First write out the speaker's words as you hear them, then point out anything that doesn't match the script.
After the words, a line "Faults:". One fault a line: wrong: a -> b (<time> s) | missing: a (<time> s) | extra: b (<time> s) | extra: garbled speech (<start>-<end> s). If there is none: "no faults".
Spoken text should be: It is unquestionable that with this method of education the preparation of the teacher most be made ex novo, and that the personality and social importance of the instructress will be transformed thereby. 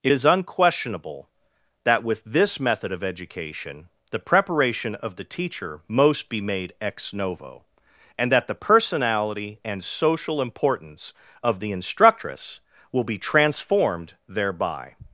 It is unquestionable that with this method of education the preparation of the teacher most be made ex novo, and that the personality and social importance of the instructress will be transformed thereby.
Faults:
no faults